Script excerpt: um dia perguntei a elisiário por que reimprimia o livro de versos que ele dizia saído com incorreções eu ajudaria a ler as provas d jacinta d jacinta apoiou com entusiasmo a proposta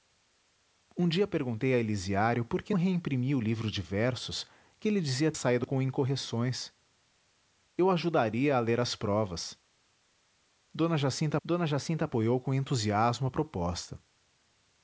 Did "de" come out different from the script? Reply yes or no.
no